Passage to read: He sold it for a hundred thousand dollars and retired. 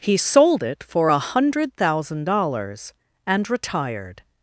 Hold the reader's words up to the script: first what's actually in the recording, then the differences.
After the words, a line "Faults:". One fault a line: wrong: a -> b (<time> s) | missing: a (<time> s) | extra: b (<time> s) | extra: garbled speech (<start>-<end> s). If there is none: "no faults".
He sold it for a hundred thousand dollars and retired.
Faults:
no faults